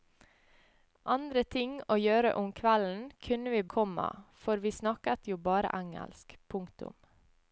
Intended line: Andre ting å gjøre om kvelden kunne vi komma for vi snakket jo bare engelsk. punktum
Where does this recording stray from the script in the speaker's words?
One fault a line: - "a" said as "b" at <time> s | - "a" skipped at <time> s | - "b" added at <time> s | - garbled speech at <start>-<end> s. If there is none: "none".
none